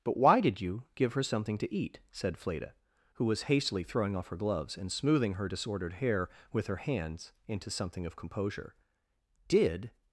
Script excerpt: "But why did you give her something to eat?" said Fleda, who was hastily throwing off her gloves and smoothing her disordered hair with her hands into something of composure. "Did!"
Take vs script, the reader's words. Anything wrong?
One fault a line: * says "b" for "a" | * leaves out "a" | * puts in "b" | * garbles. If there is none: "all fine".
all fine